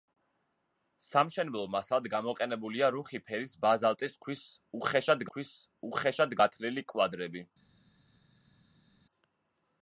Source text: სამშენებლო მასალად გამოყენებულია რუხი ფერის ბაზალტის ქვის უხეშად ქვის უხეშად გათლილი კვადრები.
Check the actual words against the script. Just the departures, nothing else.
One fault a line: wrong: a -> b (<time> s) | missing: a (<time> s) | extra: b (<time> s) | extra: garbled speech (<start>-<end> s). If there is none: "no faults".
no faults